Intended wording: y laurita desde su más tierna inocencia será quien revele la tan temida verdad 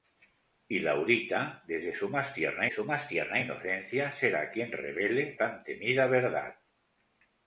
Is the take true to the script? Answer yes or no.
no